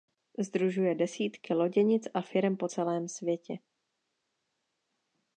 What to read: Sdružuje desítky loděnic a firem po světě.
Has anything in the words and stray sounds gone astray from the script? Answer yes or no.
yes